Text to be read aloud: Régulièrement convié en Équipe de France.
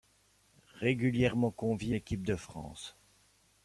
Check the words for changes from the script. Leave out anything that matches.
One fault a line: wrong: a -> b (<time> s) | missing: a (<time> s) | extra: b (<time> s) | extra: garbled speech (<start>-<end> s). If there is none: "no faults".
missing: en (1.9 s)